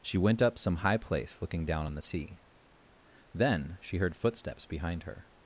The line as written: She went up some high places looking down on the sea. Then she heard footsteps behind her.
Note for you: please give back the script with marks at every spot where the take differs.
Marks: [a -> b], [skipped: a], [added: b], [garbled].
She went up some high [places -> place] looking down on the sea. Then she heard footsteps behind her.